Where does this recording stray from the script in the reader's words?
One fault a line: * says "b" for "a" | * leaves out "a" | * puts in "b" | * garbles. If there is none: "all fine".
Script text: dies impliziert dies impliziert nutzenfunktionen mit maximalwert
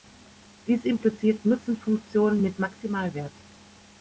* leaves out "dies impliziert"